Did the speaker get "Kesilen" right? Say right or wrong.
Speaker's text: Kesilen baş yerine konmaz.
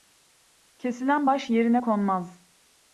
right